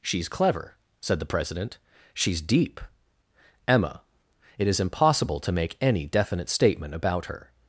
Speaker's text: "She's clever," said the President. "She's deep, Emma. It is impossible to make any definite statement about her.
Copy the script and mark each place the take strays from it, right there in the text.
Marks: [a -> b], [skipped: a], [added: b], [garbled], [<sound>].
"She's clever," said the President. "She's deep, Emma. It is impossible to make any definite statement about her.